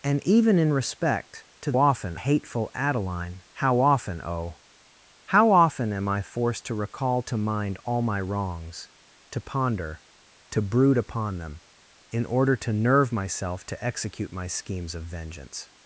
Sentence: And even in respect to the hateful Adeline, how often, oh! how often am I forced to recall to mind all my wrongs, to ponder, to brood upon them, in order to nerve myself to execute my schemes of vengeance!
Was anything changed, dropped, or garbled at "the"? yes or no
yes